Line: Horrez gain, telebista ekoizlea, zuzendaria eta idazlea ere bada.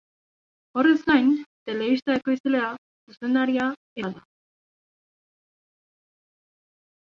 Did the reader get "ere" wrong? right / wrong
wrong